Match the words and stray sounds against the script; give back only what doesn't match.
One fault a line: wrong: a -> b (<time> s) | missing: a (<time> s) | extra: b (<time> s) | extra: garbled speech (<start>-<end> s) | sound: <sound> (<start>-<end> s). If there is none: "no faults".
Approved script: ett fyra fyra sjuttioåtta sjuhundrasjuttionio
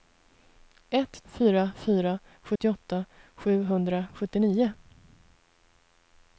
sound: dropout (2.6-2.6 s)